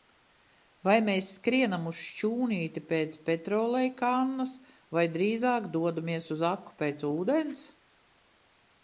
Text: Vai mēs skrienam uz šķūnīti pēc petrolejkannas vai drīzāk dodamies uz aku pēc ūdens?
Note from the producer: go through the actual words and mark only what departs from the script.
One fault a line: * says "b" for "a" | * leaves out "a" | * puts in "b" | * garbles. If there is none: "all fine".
all fine